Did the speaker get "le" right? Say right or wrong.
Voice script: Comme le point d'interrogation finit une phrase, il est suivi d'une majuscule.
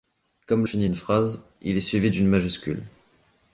wrong